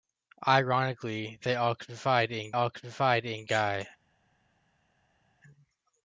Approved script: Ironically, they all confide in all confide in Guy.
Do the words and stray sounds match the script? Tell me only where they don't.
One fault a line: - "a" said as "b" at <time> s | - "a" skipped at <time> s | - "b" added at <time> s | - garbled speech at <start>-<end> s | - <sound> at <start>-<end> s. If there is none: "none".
none